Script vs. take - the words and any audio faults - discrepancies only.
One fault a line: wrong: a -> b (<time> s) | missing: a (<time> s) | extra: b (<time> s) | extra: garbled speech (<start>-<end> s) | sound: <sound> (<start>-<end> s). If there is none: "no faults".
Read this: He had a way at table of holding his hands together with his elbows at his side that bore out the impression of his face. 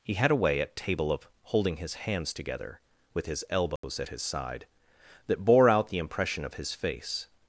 sound: dropout (3.8-3.8 s)